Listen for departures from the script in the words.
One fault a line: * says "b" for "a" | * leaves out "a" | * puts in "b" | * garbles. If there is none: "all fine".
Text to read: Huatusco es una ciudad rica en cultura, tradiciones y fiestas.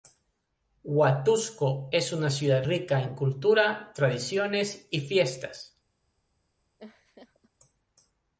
all fine